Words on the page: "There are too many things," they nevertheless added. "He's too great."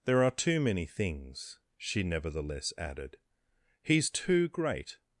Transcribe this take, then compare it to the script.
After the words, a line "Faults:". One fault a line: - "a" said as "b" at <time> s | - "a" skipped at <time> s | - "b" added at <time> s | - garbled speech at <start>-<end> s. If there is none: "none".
"There are too many things," she nevertheless added. "He's too great."
Faults:
- "they" said as "she" at 1.8 s